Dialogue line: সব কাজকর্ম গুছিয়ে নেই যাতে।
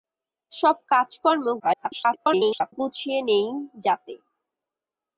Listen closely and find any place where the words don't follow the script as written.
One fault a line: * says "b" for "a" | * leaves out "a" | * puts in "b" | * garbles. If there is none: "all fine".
* garbles